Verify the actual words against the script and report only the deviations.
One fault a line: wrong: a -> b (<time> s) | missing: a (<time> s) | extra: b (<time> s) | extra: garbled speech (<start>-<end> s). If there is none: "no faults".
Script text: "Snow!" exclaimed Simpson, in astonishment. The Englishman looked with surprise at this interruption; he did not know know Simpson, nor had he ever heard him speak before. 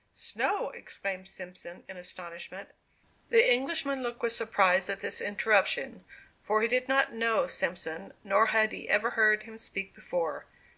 extra: for (6.4 s)
missing: know (7.5 s)